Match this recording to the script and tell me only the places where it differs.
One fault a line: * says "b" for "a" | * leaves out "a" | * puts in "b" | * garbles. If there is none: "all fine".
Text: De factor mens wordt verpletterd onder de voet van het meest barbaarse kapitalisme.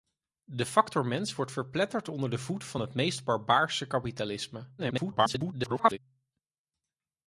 * garbles